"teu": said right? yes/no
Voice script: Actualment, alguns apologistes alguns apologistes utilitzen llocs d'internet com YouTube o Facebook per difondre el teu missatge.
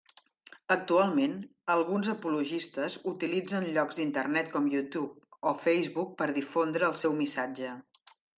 no